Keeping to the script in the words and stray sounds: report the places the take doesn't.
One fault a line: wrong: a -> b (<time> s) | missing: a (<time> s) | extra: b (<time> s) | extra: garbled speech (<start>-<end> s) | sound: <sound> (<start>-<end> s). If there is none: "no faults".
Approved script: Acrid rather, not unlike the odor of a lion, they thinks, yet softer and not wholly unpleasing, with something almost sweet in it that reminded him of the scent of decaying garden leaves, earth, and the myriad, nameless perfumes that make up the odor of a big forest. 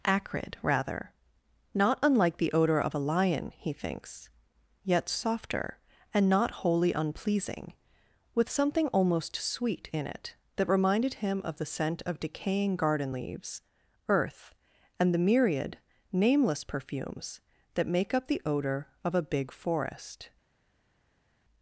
wrong: they -> he (3.5 s)